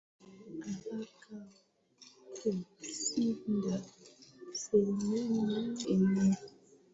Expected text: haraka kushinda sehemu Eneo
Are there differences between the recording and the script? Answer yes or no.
no